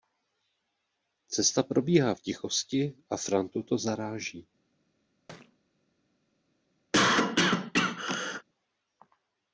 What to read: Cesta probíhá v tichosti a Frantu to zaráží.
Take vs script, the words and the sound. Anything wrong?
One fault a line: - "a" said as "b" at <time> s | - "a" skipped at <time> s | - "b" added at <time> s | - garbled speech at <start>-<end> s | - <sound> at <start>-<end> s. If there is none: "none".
- thud at 5.3-5.6 s
- cough at 6.9-8.4 s